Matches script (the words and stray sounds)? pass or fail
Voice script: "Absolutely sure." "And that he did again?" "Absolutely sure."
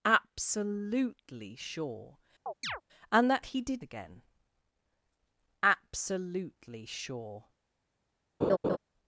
fail